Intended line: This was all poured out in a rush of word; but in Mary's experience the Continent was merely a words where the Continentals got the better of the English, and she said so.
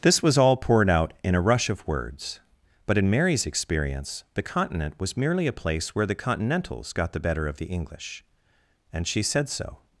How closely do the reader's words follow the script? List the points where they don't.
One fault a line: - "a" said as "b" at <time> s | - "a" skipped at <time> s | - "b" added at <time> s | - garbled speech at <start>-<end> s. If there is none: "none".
- "word" said as "words" at 1.9 s
- "words" said as "place" at 5.5 s